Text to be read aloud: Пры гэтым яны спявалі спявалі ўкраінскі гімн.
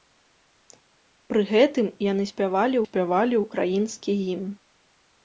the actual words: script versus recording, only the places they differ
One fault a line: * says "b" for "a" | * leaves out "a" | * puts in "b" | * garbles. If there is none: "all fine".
all fine